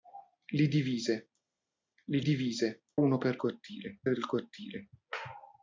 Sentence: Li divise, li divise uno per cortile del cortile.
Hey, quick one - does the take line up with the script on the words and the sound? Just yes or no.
yes